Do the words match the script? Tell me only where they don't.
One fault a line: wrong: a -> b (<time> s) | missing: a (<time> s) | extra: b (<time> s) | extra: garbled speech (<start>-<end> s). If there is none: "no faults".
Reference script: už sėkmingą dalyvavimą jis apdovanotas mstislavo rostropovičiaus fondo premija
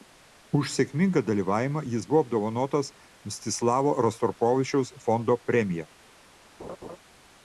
extra: buvo (2.1 s)